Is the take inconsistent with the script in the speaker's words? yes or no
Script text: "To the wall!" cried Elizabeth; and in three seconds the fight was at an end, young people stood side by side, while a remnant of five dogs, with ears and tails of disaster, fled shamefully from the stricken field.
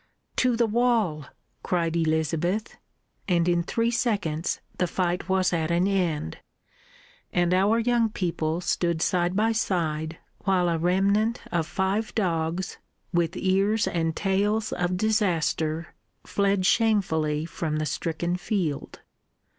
yes